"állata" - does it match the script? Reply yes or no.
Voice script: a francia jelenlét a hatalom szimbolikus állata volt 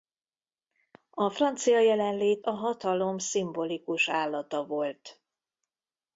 yes